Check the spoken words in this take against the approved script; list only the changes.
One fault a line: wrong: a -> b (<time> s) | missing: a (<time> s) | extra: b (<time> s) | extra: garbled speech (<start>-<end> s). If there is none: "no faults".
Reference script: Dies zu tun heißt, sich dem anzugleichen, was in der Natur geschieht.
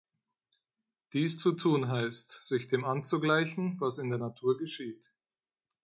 no faults